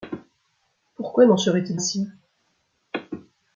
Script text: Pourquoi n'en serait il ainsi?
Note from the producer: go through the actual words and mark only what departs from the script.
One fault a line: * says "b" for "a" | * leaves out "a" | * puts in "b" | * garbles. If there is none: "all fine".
all fine